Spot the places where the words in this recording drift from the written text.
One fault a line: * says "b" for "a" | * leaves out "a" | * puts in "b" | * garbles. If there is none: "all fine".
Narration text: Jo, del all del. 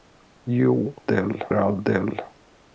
all fine